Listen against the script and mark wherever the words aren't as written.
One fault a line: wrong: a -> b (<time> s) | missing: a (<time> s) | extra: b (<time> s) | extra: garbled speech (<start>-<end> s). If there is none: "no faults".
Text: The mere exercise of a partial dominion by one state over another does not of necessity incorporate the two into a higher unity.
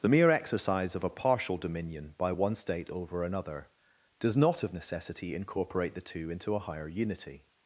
no faults